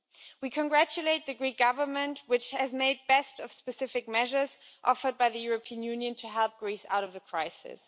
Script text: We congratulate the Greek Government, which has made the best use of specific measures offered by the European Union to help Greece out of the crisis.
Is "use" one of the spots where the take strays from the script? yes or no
yes